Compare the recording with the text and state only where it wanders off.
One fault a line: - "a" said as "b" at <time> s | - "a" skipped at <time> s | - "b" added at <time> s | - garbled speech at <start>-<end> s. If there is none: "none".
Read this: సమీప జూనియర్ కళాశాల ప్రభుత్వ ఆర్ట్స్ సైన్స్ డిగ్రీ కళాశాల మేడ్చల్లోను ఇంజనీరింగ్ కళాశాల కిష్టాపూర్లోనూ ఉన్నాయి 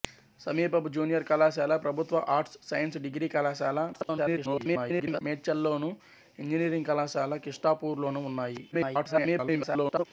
- garbled speech at 3.9-5.2 s
- garbled speech at 8.7-10.1 s